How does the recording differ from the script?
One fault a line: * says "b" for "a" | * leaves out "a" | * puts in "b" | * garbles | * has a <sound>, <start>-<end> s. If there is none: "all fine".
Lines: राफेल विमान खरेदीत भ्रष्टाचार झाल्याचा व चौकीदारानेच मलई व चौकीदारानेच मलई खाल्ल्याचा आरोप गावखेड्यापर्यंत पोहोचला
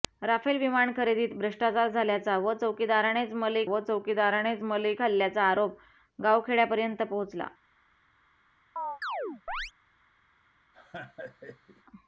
* has a chirp, 8.8-9.7 s
* has a laugh, 10.7-11.8 s